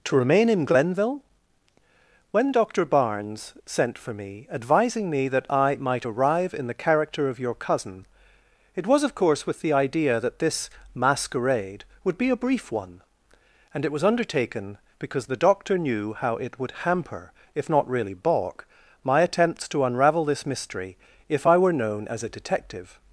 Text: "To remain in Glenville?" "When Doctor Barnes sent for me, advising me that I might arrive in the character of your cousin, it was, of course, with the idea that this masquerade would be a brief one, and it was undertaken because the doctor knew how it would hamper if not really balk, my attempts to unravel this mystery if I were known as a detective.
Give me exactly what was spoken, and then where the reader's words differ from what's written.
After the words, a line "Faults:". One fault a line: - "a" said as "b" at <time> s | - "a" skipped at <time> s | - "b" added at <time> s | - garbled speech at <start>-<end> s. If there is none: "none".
"To remain in Glenville?" "When Doctor Barnes sent for me, advising me that I might arrive in the character of your cousin, it was, of course, with the idea that this masquerade would be a brief one, and it was undertaken because the doctor knew how it would hamper if not really balk, my attempts to unravel this mystery if I were known as a detective.
Faults:
none